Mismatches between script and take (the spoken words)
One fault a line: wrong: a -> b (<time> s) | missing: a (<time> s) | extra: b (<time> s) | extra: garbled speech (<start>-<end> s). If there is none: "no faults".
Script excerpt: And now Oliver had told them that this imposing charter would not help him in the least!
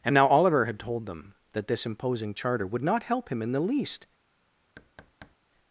no faults